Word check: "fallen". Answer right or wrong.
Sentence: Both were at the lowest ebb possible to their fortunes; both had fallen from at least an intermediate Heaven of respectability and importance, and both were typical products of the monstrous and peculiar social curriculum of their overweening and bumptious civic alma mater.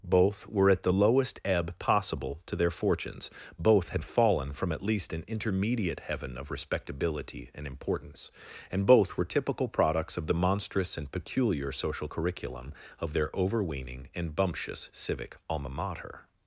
right